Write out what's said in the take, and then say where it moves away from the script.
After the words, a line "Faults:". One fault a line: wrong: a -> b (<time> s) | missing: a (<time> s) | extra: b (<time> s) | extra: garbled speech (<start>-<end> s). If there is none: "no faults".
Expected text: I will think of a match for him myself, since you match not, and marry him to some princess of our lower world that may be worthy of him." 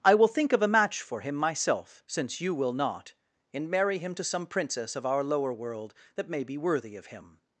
I will think of a match for him myself, since you will not, and marry him to some princess of our lower world that may be worthy of him."
Faults:
wrong: match -> will (2.5 s)